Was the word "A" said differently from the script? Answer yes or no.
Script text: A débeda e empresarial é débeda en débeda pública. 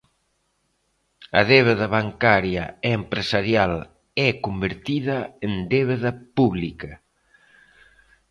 no